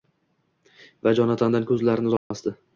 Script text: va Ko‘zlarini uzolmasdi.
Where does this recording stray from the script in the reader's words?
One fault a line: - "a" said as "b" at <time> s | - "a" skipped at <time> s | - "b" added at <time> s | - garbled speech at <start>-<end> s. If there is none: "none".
- "Jonatandan" added at 1.2 s